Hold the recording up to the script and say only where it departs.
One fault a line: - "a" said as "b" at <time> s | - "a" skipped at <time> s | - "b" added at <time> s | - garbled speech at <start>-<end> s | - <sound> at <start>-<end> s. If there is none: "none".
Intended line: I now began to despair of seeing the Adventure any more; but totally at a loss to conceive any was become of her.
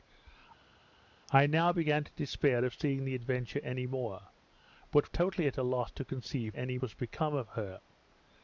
none